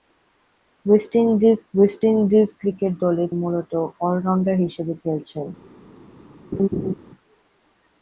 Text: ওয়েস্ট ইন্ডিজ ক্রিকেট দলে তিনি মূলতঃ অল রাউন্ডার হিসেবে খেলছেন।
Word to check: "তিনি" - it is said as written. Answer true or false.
false